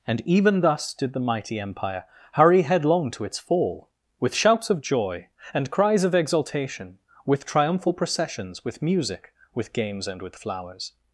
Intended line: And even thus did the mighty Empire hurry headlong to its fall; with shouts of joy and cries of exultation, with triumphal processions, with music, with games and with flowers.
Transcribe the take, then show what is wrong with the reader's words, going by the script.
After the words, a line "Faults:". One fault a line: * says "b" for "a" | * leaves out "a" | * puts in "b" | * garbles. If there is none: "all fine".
And even thus did the mighty Empire hurry headlong to its fall; with shouts of joy and cries of exultation, with triumphal processions, with music, with games and with flowers.
Faults:
all fine